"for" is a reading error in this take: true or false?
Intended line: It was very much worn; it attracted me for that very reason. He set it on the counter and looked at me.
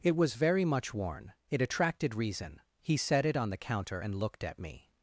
true